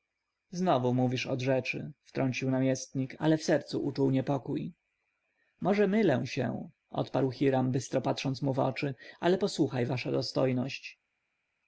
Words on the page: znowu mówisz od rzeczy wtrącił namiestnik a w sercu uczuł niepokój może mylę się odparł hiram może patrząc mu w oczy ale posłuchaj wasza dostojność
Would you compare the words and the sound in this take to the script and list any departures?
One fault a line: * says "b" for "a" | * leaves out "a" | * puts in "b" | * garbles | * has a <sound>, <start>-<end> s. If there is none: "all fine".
* says "ale" for "a"
* says "bystro" for "może"